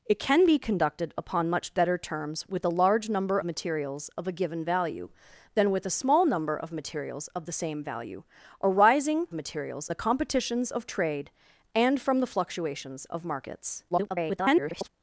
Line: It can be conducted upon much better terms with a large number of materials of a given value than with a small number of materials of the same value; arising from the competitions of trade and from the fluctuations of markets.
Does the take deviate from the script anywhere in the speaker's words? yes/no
yes